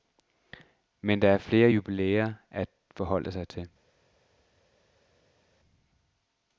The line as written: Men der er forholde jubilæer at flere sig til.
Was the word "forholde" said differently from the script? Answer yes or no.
yes